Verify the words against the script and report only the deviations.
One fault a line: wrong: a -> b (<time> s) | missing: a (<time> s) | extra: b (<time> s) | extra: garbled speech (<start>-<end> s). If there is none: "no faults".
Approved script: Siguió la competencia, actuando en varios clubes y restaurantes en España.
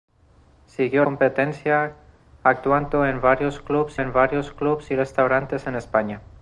missing: la (1.1 s)
extra: en varios clubes (4.0 s)